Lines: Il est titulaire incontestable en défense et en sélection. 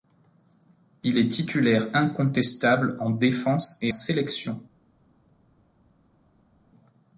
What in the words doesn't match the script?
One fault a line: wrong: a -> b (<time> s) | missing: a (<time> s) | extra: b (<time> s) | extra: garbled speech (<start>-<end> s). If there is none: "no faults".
missing: en (3.9 s)